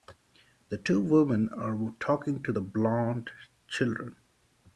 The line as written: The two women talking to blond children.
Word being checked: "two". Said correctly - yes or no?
yes